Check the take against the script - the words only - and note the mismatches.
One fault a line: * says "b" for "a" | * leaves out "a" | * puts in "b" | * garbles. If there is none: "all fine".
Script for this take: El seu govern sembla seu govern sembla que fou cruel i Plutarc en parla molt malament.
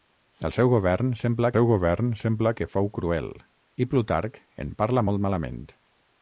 all fine